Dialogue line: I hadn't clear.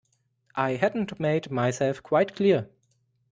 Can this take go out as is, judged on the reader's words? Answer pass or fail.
fail